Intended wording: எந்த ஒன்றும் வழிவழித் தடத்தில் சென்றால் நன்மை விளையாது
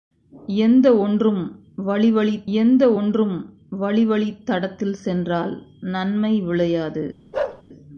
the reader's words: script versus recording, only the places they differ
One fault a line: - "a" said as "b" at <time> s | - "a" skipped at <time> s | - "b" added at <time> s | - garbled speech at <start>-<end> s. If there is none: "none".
- "எந்த ஒன்றும் வழிவழித்" added at 2.6 s